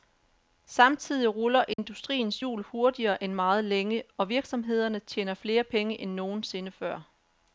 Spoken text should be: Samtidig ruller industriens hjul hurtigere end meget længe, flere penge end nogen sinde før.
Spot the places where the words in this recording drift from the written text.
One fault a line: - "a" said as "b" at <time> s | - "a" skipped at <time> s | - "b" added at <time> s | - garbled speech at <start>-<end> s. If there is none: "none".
- "og virksomhederne tjener" added at 4.2 s